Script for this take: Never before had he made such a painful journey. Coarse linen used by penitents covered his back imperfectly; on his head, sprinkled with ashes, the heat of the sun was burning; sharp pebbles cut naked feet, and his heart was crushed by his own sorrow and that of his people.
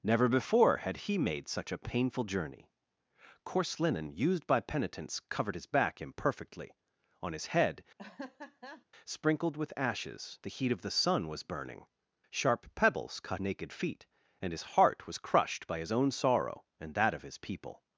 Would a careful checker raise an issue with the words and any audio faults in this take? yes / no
yes